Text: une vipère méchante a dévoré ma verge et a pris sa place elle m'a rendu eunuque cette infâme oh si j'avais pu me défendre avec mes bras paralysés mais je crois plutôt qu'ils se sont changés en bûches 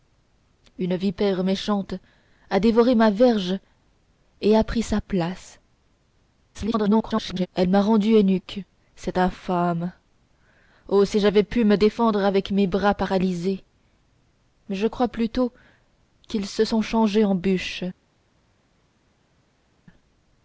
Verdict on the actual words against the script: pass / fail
fail